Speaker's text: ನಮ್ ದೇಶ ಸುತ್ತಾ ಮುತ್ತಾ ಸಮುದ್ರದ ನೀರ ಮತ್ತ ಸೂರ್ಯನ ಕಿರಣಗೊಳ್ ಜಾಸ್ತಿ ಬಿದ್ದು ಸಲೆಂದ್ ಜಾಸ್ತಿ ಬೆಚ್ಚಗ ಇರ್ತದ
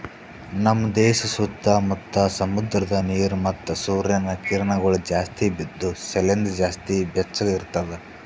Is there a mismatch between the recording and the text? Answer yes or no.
no